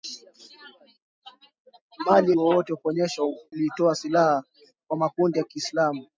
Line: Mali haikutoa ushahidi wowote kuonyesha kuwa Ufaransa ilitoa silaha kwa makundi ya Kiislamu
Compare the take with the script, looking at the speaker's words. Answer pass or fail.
fail